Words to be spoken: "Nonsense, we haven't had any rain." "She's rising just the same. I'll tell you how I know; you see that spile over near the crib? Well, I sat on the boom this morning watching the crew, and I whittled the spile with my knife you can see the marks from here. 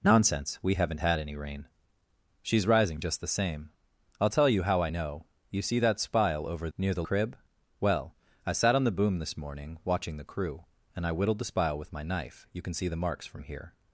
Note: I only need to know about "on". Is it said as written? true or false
true